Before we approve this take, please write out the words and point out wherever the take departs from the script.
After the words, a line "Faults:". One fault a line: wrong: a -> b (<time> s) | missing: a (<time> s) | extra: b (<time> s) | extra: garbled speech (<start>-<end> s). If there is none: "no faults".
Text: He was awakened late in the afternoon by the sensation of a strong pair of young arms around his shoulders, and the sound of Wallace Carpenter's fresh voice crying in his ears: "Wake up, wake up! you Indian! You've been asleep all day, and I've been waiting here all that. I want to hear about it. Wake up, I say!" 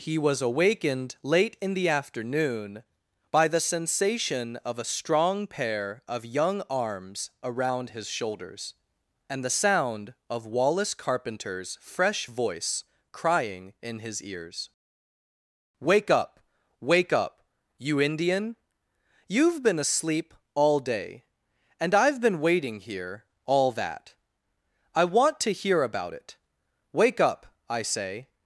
He was awakened late in the afternoon by the sensation of a strong pair of young arms around his shoulders, and the sound of Wallace Carpenter's fresh voice crying in his ears: "Wake up, wake up! you Indian! You've been asleep all day, and I've been waiting here all that. I want to hear about it. Wake up, I say!"
Faults:
no faults